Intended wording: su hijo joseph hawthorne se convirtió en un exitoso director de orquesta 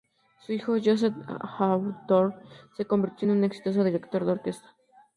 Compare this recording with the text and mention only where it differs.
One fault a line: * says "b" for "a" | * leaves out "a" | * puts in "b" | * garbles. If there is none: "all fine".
all fine